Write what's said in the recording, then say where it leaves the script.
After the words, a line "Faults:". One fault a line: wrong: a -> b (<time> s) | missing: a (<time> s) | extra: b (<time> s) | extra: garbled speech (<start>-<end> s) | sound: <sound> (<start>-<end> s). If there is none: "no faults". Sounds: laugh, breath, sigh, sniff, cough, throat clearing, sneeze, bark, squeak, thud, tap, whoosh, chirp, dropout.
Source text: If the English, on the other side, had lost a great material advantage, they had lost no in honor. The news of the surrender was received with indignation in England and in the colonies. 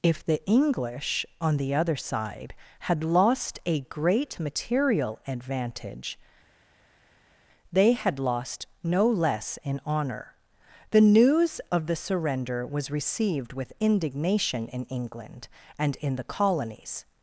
If the English, on the other side, had lost a great material advantage, they had lost no less in honor. The news of the surrender was received with indignation in England and in the colonies.
Faults:
extra: less (9.1 s)